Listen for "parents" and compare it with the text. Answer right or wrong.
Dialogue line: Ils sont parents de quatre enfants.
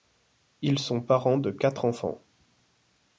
right